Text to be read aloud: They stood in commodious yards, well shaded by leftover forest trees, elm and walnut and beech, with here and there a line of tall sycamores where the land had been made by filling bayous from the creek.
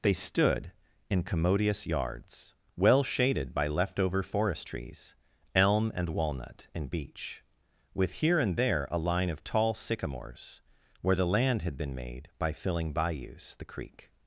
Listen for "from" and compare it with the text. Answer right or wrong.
wrong